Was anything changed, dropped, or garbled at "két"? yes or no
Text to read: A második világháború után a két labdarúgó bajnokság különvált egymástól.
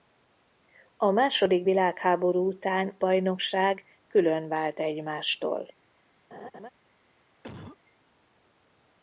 yes